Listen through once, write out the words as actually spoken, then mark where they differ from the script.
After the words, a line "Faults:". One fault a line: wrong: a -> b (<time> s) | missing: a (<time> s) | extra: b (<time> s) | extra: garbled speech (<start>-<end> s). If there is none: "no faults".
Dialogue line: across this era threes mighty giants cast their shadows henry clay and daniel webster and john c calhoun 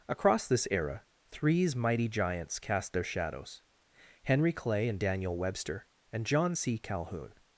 across this era threes mighty giants cast their shadows henry clay and daniel webster and john c calhoun
Faults:
no faults